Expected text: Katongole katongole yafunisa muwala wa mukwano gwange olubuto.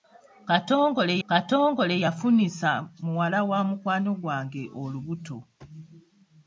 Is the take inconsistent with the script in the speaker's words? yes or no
no